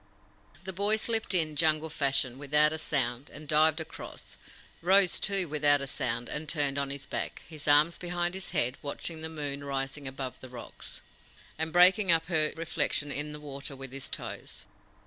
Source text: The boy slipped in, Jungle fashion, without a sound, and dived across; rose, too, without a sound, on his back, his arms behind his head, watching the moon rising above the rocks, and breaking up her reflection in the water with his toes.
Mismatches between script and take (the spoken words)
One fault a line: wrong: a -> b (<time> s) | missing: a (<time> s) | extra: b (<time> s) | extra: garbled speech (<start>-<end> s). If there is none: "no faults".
extra: and turned (6.3 s)